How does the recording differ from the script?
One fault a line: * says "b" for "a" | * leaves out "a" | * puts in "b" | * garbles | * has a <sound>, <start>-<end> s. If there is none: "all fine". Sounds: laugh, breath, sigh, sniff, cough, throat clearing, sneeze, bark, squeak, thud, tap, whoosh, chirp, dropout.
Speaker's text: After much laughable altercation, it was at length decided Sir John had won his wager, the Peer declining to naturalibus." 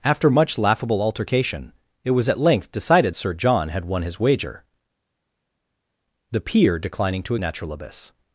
all fine